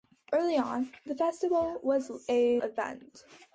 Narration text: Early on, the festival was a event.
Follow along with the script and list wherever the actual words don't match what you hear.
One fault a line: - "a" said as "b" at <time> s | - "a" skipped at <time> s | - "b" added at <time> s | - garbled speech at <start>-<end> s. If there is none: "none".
none